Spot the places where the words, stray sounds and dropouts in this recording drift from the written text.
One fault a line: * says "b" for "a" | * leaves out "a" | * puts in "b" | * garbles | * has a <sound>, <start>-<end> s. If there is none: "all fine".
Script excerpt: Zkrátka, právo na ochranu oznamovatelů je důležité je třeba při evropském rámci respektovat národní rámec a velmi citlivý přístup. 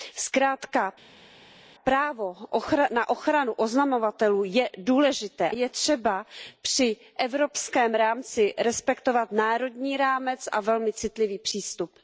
all fine